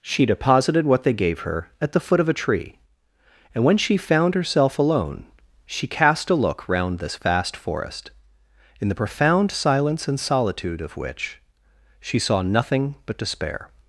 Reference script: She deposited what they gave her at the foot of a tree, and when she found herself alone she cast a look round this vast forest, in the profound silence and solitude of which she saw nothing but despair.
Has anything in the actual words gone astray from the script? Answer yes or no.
no